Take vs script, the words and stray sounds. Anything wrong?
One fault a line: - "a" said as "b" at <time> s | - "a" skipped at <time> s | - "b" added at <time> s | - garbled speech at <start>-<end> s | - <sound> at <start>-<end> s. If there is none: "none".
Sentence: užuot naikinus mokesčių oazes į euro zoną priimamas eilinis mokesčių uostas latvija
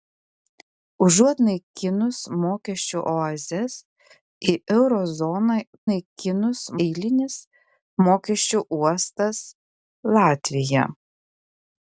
- "priimamas" said as "naikinus" at 5.9 s